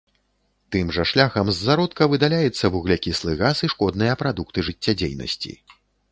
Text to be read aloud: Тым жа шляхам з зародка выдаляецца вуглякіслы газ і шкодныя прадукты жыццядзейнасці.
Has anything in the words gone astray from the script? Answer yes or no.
no